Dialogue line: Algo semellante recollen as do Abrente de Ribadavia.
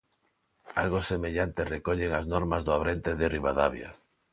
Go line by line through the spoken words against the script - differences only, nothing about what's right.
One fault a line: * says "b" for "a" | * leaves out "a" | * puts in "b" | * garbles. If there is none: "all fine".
* puts in "normas"